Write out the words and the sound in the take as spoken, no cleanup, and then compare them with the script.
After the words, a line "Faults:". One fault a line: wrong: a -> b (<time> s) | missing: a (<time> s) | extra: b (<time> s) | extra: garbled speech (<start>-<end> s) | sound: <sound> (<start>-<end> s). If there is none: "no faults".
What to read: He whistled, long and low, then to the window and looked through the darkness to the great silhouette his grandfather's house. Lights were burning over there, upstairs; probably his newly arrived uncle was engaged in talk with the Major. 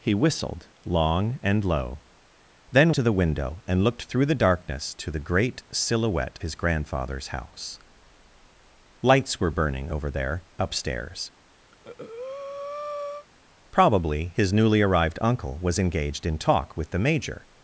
He whistled, long and low, then to the window and looked through the darkness to the great silhouette his grandfather's house. Lights were burning over there, upstairs; probably his newly arrived uncle was engaged in talk with the Major.
Faults:
sound: breath (11.7-13.3 s)